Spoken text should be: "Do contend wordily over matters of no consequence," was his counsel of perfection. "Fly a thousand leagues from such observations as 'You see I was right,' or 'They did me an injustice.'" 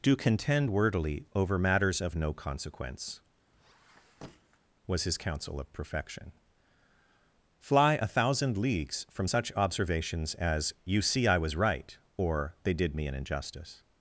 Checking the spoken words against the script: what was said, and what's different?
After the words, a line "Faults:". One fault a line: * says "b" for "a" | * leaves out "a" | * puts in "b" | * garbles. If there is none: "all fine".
"Do contend wordily over matters of no consequence," was his counsel of perfection. "Fly a thousand leagues from such observations as 'You see I was right,' or 'They did me an injustice.'"
Faults:
all fine